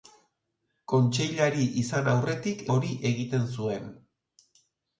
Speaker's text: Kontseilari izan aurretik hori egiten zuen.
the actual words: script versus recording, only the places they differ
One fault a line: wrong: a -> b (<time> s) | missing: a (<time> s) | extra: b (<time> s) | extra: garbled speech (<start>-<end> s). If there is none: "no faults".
no faults